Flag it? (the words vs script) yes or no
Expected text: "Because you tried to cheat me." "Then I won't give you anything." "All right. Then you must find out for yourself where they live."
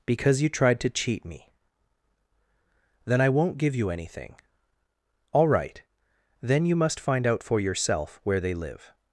no